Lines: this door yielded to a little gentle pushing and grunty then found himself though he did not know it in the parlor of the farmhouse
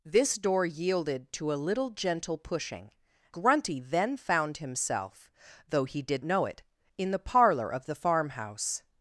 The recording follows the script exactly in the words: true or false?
false